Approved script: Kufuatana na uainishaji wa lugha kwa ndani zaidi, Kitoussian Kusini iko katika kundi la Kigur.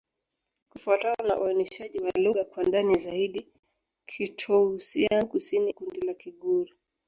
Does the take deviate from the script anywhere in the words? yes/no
yes